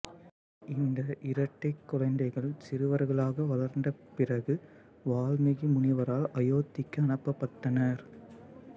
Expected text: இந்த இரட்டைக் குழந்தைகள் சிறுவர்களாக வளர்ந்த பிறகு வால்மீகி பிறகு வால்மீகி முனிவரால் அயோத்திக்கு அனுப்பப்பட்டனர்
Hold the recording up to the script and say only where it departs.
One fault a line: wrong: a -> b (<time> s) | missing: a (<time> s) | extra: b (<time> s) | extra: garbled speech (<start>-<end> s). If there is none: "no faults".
missing: பிறகு வால்மீகி (5.7 s)